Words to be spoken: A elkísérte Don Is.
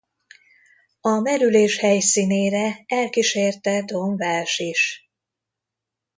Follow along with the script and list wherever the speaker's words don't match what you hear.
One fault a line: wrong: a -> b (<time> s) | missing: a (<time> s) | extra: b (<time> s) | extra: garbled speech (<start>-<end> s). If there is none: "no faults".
extra: merülés helyszínére (1.2 s)
extra: Walsh (4.2 s)